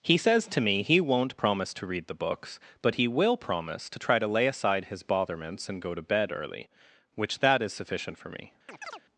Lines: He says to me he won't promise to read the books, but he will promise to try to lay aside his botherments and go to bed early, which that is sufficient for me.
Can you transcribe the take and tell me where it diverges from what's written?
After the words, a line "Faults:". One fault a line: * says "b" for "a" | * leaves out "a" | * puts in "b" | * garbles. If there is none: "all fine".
He says to me he won't promise to read the books, but he will promise to try to lay aside his botherments and go to bed early, which that is sufficient for me.
Faults:
all fine